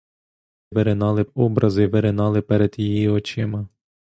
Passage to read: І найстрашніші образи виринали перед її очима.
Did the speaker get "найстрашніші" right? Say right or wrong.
wrong